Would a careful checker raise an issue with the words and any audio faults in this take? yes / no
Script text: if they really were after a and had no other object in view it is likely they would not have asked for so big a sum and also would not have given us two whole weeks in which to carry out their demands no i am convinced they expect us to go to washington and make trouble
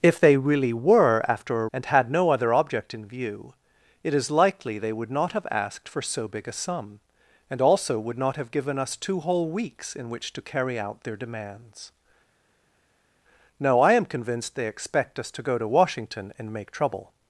no